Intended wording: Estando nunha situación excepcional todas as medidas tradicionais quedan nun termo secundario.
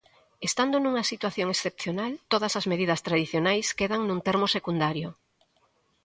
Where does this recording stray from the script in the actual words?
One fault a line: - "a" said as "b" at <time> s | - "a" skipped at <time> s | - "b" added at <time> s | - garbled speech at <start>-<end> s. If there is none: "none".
none